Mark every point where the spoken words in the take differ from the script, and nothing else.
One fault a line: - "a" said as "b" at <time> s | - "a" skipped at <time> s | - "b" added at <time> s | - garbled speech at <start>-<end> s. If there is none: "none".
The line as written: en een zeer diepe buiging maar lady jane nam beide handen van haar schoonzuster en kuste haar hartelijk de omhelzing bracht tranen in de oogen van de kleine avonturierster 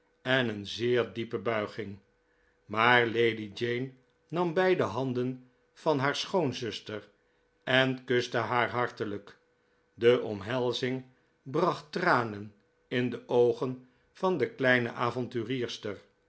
none